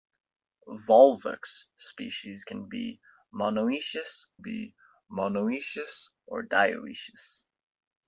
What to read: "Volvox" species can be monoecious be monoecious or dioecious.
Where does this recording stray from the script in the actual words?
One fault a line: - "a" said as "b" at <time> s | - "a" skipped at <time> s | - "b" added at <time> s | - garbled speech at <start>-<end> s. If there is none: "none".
none